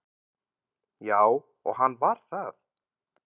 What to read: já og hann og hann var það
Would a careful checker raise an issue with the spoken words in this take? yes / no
yes